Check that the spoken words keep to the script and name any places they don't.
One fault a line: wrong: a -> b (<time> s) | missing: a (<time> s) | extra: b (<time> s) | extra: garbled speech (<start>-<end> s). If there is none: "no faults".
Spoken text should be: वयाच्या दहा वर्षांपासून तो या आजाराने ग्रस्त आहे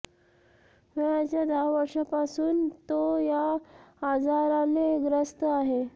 no faults